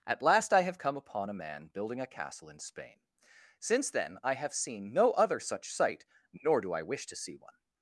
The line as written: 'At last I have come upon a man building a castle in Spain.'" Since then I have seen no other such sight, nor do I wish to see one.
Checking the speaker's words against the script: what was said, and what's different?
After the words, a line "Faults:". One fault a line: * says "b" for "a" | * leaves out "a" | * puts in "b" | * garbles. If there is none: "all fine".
'At last I have come upon a man building a castle in Spain.'" Since then I have seen no other such sight, nor do I wish to see one.
Faults:
all fine